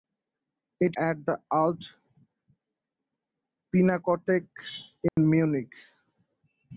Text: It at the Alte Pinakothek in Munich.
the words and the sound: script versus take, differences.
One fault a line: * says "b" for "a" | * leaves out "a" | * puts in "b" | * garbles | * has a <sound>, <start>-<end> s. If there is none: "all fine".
* has a dropout, 5.1-5.2 s